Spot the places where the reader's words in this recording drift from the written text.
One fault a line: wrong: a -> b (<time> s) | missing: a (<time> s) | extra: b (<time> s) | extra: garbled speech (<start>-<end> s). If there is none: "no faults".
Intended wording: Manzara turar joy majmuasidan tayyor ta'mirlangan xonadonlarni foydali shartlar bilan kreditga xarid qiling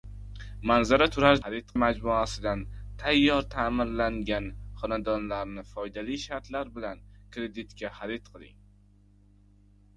wrong: joy -> xarid (1.4 s)